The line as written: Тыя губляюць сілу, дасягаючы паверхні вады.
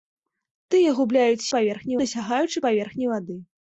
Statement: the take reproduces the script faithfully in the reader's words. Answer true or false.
false